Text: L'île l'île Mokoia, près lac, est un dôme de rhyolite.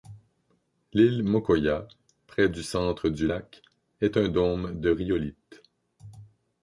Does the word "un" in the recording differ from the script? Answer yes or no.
no